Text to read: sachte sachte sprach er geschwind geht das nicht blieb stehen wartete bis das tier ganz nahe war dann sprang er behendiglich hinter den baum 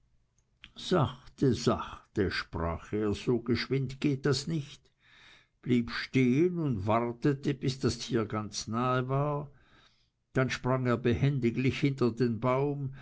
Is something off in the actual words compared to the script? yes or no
yes